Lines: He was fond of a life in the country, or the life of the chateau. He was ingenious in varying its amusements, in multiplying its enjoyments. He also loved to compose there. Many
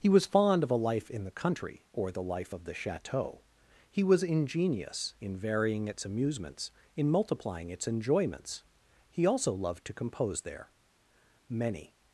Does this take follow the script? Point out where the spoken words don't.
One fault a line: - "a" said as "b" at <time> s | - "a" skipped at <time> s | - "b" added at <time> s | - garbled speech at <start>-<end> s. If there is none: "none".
none